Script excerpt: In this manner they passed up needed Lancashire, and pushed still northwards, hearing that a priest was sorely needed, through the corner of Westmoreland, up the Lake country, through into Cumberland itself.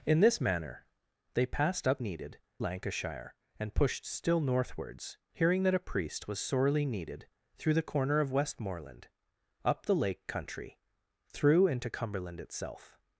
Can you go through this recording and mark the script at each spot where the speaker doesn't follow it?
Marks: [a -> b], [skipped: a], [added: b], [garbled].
In this manner they passed up needed Lancashire, and pushed still northwards, hearing that a priest was sorely needed, through the corner of Westmoreland, up the Lake country, through into Cumberland itself.